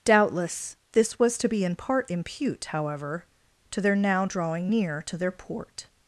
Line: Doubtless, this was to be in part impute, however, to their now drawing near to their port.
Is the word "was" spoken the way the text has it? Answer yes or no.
yes